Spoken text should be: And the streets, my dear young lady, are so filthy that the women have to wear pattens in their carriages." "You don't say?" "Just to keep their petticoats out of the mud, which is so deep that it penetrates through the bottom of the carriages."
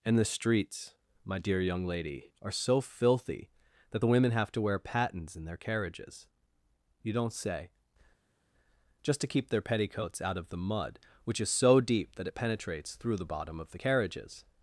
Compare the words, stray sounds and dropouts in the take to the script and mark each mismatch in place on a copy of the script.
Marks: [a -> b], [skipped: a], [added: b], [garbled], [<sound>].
And the streets, my dear young lady, are so filthy that the women have to wear pattens in their carriages." "You don't say?" "Just to keep their petticoats out of the mud, which is so deep that it penetrates through the bottom of the carriages."